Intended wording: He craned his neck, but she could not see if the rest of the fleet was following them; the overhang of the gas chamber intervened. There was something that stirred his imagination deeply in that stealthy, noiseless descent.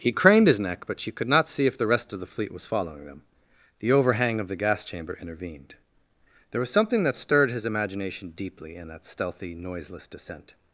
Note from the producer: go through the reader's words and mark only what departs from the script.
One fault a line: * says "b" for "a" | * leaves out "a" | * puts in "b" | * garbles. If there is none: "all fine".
all fine